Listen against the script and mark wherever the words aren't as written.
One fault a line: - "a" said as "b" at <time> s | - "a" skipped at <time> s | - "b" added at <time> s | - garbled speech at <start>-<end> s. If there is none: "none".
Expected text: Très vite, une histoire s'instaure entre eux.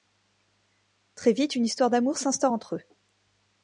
- "d'amour" added at 1.9 s